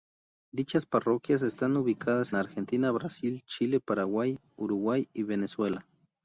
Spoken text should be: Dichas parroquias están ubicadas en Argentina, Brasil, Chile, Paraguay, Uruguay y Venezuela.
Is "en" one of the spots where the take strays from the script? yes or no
yes